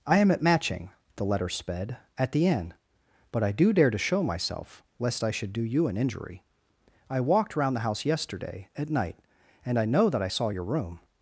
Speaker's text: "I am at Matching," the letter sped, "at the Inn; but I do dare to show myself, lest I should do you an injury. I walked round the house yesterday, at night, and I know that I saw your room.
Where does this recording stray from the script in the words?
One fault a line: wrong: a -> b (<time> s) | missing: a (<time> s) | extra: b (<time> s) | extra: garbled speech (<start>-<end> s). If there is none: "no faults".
no faults